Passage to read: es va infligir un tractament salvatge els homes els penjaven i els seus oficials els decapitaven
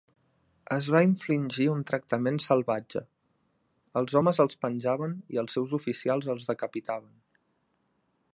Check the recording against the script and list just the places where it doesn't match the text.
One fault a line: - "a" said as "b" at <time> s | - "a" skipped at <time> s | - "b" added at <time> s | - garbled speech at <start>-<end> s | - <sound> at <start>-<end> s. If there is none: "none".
none